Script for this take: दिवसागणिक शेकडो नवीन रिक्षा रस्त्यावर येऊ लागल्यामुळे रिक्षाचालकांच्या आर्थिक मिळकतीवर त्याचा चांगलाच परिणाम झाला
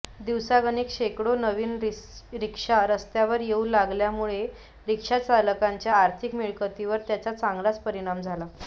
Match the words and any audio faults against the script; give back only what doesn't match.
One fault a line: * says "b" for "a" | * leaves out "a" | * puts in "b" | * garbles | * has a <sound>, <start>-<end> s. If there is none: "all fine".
all fine